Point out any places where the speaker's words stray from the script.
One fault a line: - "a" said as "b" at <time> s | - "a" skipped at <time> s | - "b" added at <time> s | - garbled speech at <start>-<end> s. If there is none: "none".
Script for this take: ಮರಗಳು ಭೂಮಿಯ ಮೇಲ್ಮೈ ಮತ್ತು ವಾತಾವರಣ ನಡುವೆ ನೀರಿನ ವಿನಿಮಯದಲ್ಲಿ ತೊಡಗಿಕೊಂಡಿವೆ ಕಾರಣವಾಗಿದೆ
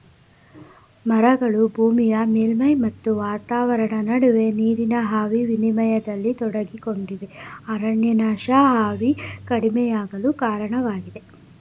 - "ಆವಿ" added at 5.2 s
- "ಅರಣ್ಯನಾಶ ಆವಿ ಕಡಿಮೆಯಾಗಲು" added at 7.7 s